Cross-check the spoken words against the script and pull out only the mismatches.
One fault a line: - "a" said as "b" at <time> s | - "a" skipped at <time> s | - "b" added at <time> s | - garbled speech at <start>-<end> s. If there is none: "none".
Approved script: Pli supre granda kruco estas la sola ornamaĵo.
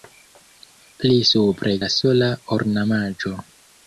- "granda kruco estas" skipped at 1.8 s